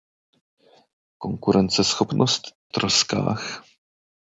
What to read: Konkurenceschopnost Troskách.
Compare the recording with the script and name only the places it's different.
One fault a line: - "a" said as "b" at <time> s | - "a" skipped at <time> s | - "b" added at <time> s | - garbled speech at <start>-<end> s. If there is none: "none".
none